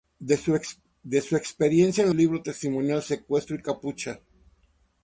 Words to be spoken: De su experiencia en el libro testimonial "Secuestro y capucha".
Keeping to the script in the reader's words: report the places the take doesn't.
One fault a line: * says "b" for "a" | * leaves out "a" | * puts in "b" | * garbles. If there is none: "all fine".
all fine